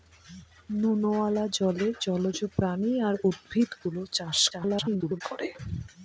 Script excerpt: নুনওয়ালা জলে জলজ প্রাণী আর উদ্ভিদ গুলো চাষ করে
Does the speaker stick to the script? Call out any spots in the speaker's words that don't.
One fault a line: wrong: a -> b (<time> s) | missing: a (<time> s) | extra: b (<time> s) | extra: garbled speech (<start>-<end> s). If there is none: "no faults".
extra: garbled speech (4.5-5.2 s)